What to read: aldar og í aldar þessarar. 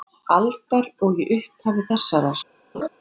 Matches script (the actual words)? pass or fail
fail